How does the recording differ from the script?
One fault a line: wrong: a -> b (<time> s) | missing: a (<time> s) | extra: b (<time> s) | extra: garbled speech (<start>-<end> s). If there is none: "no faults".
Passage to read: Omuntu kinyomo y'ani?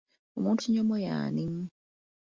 no faults